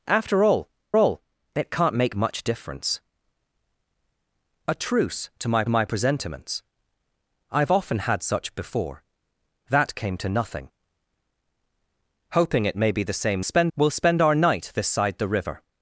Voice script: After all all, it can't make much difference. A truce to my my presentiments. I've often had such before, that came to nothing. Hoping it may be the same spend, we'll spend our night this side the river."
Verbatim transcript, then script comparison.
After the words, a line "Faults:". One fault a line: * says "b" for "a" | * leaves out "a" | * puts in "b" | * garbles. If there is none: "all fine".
After all all, it can't make much difference. A truce to my my presentiments. I've often had such before, that came to nothing. Hoping it may be the same spend, we'll spend our night this side the river."
Faults:
all fine